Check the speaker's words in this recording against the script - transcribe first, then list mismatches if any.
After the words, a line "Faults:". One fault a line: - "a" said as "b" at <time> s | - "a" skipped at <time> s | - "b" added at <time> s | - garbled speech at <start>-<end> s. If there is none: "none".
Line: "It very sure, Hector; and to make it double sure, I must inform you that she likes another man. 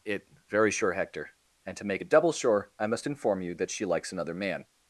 "It very sure, Hector; and to make it double sure, I must inform you that she likes another man.
Faults:
none